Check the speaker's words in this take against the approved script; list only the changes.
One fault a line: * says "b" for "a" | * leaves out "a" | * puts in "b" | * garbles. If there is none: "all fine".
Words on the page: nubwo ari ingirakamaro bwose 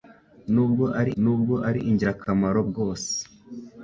* puts in "nubwo ari"